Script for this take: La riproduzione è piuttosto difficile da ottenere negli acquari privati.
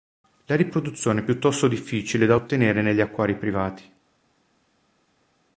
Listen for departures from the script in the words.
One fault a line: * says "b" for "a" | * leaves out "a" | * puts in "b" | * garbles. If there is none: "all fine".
all fine